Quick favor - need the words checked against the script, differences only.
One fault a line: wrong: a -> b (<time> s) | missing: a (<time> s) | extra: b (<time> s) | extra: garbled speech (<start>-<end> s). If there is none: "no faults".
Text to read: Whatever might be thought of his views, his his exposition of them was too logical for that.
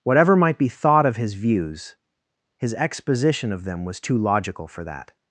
missing: his (2.7 s)